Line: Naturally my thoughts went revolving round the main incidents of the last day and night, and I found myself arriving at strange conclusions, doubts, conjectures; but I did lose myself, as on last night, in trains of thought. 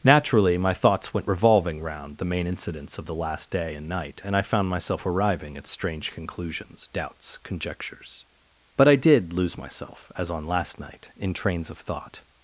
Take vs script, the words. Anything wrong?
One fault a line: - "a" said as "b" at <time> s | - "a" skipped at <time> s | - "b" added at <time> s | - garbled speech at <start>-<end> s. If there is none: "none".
none